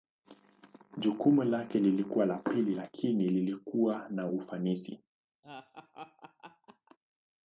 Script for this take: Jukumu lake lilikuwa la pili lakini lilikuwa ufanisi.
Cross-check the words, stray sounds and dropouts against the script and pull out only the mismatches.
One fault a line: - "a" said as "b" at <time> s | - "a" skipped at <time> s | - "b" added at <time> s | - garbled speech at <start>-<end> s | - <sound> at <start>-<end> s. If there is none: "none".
- "na" added at 4.1 s
- laugh at 5.4-7.0 s